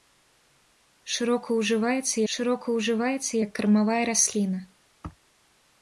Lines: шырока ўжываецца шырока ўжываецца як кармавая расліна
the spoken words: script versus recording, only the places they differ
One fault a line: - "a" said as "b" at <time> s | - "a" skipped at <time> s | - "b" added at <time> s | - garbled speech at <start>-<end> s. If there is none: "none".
none